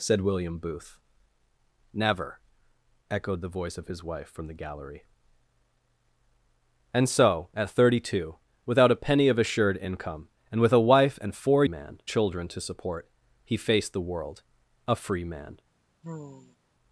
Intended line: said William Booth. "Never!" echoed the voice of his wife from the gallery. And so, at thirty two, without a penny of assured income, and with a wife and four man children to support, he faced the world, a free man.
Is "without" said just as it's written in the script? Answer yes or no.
yes